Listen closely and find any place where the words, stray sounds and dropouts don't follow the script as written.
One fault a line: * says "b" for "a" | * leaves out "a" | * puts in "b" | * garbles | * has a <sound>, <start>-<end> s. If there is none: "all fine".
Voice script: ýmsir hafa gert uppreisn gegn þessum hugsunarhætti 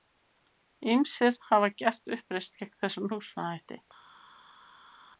all fine